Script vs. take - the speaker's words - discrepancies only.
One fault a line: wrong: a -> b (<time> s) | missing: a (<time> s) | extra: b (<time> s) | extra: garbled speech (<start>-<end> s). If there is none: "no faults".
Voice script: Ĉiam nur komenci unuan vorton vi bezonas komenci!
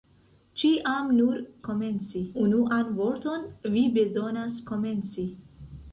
no faults